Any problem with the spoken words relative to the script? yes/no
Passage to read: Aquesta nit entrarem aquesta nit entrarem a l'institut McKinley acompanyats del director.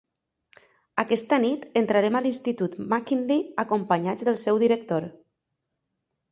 yes